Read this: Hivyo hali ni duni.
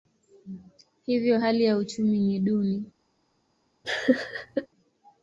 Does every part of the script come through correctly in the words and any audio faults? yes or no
no